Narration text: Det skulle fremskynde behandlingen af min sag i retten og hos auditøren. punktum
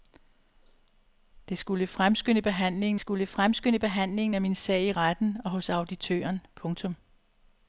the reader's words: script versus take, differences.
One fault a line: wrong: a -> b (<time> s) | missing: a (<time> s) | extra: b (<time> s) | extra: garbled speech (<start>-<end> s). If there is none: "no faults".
extra: skulle fremskynde behandlingen (3.0 s)